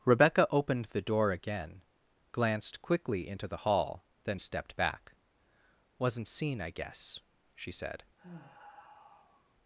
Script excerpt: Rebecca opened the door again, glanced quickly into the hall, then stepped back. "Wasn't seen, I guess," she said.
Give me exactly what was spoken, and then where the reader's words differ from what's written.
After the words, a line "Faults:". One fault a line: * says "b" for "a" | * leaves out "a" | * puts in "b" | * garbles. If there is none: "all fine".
Rebecca opened the door again, glanced quickly into the hall, then stepped back. "Wasn't seen, I guess," she said.
Faults:
all fine